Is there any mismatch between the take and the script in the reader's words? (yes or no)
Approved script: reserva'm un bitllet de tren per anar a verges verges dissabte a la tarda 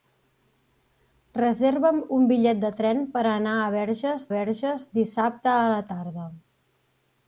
no